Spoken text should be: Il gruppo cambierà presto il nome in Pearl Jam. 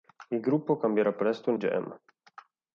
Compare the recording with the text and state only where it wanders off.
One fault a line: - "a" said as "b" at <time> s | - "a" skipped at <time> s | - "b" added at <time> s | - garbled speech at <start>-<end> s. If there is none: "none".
- "nome in Pearl" skipped at 1.6 s